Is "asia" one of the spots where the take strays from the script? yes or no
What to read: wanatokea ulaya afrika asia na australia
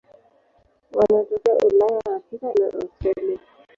yes